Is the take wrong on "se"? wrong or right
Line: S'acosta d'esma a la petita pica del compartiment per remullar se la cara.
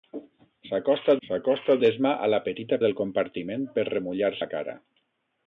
wrong